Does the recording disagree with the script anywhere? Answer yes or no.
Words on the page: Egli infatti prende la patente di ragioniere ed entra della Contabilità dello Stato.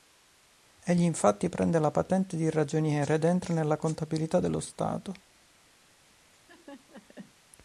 yes